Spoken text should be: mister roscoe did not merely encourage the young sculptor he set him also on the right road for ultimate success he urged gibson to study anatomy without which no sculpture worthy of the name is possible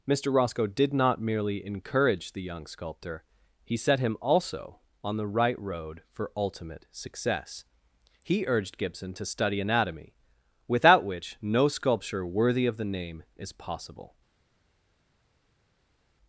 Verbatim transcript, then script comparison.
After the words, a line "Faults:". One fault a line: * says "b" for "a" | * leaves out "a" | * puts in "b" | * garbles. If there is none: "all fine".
mister roscoe did not merely encourage the young sculptor he set him also on the right road for ultimate success he urged gibson to study anatomy without which no sculpture worthy of the name is possible
Faults:
all fine